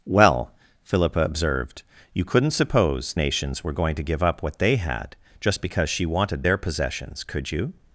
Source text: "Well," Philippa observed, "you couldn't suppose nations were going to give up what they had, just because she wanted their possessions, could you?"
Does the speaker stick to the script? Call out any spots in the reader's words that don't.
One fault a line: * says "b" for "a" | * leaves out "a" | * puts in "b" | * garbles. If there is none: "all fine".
all fine